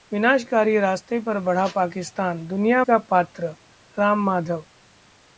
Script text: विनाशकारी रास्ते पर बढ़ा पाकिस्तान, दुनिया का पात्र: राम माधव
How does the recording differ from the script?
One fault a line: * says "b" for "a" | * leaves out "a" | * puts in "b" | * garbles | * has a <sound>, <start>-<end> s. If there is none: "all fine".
all fine